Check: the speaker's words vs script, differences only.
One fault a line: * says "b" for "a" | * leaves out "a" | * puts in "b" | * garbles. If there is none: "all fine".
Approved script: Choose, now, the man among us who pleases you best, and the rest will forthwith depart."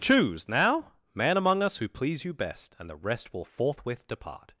* leaves out "the"
* says "please" for "pleases"